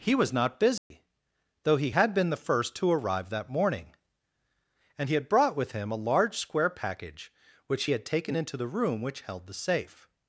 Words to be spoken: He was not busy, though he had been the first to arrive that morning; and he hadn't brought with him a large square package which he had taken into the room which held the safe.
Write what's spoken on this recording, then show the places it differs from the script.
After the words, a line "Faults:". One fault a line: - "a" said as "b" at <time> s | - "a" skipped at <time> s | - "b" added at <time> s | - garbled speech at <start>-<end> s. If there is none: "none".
He was not busy, though he had been the first to arrive that morning; and he had brought with him a large square package which he had taken into the room which held the safe.
Faults:
- "hadn't" said as "had" at 5.2 s